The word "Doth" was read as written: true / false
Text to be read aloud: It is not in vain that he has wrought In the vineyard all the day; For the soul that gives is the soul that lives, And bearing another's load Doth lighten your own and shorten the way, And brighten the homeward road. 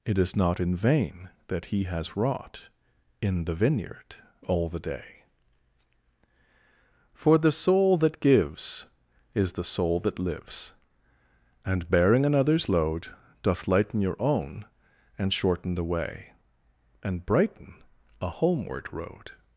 true